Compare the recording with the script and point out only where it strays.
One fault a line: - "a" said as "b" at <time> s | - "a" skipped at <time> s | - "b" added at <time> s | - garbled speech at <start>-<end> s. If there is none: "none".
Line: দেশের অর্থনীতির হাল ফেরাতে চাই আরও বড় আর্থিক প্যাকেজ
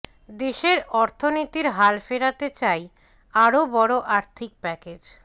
none